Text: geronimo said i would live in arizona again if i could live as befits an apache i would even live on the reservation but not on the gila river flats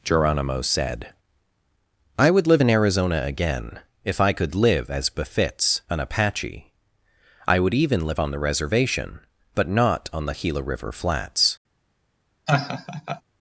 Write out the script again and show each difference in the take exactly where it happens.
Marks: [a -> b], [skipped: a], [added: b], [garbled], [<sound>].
geronimo said i would live in arizona again if i could live as befits an apache i would even live on the reservation but not on the gila river flats [laugh]